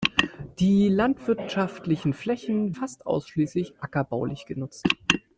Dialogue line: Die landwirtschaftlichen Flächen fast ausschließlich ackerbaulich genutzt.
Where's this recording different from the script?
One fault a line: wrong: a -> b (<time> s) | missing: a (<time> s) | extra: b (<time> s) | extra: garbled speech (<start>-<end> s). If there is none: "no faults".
no faults